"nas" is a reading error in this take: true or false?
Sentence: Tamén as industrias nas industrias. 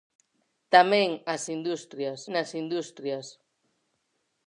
false